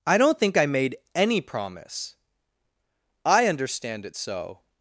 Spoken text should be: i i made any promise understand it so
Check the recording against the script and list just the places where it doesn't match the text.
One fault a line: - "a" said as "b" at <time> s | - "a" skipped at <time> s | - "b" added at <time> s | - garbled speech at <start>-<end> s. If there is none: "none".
- "don't think" added at 0.2 s
- "i" added at 3.2 s